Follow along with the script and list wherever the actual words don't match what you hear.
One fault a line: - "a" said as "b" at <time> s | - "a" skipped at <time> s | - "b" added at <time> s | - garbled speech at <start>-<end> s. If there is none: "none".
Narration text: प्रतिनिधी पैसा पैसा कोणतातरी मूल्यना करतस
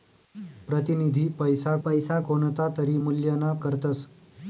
none